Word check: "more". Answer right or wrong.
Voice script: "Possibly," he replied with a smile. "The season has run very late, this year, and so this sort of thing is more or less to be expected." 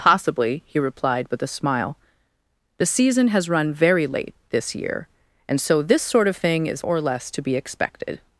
wrong